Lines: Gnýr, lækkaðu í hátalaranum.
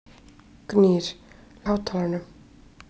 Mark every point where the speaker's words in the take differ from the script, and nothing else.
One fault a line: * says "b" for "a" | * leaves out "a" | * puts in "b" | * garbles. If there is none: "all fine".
* leaves out "lækkaðu"